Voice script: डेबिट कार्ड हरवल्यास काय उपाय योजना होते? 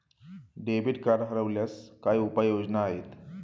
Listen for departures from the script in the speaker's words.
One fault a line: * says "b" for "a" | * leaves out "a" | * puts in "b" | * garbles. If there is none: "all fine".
* says "आहेत" for "होते"